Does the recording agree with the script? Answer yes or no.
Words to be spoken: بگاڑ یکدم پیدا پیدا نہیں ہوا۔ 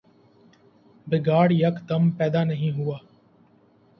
no